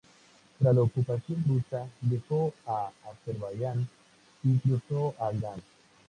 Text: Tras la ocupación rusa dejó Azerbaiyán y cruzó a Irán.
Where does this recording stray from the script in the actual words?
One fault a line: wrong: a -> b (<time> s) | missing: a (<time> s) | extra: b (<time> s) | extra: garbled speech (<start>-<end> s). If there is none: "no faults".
no faults